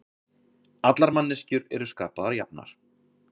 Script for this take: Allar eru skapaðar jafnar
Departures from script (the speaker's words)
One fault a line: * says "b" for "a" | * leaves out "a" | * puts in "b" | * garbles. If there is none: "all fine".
* puts in "manneskjur"